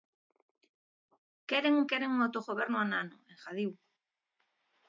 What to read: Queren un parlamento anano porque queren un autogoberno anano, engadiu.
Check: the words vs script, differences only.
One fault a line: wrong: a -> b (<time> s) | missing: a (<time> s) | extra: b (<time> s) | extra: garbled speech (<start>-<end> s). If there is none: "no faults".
missing: parlamento anano porque (1.9 s)